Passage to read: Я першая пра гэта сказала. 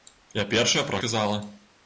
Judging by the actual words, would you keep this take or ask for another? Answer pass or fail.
fail